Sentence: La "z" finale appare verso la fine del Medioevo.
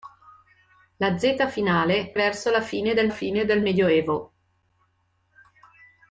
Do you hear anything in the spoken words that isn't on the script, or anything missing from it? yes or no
yes